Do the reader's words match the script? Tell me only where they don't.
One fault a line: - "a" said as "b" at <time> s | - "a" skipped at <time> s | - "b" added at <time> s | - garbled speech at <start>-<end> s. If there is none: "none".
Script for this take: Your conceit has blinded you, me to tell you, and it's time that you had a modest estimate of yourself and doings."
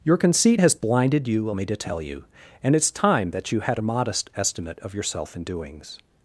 none